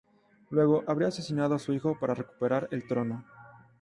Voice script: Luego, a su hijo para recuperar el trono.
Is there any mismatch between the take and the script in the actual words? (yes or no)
yes